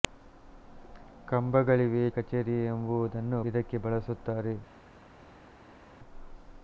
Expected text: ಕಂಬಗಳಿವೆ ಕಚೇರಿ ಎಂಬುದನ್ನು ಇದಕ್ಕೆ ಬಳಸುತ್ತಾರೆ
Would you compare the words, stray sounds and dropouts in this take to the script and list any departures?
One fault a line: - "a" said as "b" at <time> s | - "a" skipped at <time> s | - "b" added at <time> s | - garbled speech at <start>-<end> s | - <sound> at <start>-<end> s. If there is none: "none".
none